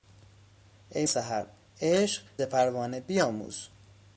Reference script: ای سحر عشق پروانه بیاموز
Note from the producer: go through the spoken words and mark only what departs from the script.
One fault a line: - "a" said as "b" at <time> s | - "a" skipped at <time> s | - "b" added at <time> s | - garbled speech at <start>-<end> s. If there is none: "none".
none